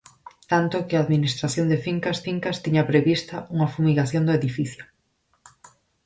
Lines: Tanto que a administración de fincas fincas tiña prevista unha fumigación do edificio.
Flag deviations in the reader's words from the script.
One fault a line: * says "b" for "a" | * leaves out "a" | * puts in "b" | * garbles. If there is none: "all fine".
all fine